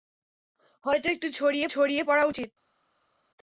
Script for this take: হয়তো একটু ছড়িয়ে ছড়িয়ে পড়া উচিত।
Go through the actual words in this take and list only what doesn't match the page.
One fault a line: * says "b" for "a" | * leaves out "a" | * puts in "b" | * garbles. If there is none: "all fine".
all fine